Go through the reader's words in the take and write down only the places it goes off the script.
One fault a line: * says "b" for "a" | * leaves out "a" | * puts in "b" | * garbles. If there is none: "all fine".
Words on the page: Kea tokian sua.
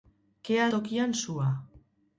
all fine